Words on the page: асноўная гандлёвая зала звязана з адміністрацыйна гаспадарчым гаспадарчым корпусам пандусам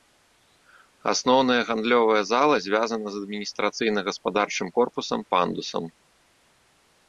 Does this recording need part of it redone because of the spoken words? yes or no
yes